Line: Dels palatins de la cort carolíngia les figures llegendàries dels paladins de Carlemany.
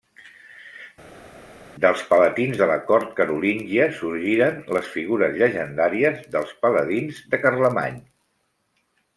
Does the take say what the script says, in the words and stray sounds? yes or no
no